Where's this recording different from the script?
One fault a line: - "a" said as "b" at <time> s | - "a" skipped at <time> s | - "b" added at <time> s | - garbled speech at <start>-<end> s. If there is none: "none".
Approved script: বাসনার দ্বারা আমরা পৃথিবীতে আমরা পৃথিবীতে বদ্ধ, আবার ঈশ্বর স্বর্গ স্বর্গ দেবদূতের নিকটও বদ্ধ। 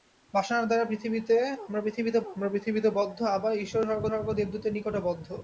none